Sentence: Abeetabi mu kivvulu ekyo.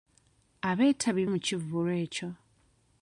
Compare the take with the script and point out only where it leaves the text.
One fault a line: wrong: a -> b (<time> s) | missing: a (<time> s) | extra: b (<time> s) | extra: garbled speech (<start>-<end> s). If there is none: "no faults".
no faults